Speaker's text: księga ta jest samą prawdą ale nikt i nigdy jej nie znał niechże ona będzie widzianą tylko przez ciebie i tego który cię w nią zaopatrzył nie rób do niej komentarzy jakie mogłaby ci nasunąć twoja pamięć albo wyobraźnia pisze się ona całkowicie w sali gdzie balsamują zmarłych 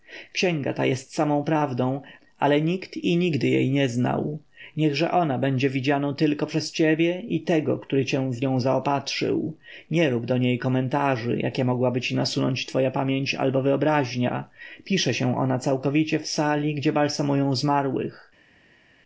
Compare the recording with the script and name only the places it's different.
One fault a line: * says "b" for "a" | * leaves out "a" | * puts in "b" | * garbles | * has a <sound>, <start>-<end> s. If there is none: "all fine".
all fine